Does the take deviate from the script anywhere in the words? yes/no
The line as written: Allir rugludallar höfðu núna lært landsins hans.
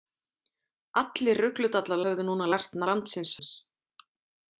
no